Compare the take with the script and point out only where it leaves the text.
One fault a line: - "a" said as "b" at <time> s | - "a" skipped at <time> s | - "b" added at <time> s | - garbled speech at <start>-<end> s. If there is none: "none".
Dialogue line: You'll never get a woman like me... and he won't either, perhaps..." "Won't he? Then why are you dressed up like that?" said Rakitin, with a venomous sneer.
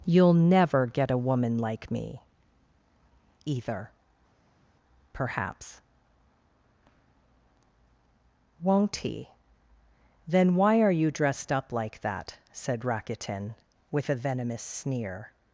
- "and he won't" skipped at 2.2 s